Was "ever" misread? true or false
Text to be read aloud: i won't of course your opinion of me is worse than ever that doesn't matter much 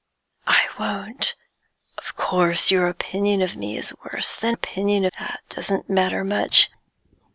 true